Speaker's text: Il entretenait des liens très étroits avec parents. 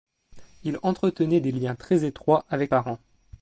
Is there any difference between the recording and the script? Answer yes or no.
no